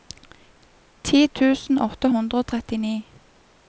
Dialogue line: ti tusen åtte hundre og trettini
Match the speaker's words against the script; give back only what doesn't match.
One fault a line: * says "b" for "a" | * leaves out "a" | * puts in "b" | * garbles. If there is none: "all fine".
all fine